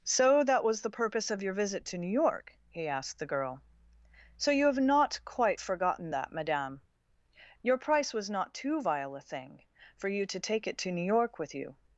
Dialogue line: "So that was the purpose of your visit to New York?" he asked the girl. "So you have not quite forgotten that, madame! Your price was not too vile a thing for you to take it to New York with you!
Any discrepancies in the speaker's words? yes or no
no